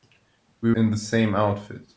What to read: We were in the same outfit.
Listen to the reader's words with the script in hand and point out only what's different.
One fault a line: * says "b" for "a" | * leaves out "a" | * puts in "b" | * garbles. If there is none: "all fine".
* leaves out "were"